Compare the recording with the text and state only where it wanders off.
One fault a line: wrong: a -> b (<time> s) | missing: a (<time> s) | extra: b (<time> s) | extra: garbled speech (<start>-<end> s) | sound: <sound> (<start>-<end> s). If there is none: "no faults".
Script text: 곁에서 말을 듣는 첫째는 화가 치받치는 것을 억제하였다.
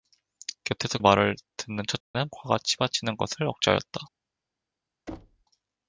sound: dropout (2.0-2.1 s)
sound: thud (5.1-5.4 s)